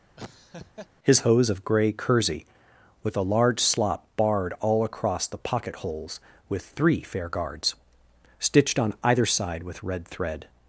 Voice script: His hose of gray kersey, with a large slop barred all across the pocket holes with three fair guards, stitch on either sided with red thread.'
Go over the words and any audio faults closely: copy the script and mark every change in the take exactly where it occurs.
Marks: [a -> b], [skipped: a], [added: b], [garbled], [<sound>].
[laugh] His hose of gray kersey, with a large slop barred all across the pocket holes with three fair guards, [stitch -> stitched] on either [sided -> side] with red thread.'